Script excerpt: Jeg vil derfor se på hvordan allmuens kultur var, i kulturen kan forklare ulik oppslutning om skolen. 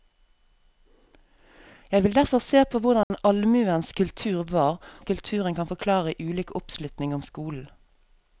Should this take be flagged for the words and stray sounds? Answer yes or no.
yes